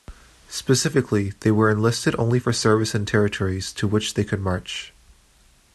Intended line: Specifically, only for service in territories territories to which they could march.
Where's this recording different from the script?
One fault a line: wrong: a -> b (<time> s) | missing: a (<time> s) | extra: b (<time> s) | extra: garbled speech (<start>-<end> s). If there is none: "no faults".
extra: they were enlisted (1.4 s)
missing: territories (3.7 s)